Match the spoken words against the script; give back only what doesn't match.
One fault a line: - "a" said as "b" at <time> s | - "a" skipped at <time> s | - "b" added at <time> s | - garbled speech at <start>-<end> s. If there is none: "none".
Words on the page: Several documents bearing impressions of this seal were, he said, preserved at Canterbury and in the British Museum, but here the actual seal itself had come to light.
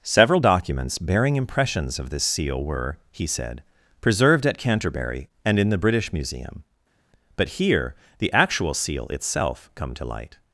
- "had" skipped at 9.7 s